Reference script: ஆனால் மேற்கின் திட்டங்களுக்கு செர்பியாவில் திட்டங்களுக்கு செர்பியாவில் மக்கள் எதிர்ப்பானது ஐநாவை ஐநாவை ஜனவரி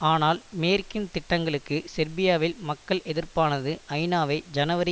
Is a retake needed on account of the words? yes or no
yes